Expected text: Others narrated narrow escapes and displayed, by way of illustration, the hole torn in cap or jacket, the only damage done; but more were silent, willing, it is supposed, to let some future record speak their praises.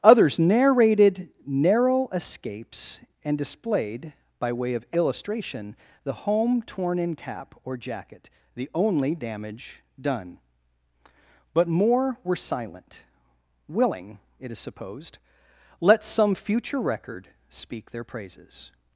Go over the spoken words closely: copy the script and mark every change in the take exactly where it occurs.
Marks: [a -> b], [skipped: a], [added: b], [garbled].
Others narrated narrow escapes and displayed, by way of illustration, the [hole -> home] torn in cap or jacket, the only damage done; but more were silent, willing, it is supposed, [skipped: to] let some future record speak their praises.